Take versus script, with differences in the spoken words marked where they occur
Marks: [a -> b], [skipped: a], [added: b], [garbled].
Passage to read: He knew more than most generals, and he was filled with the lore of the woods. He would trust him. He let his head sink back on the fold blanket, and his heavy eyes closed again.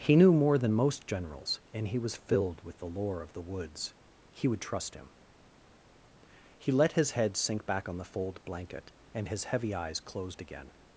He knew more than most generals, and he was filled with the lore of the woods. He would trust him. He let his head sink back on the fold blanket, and his heavy eyes closed again.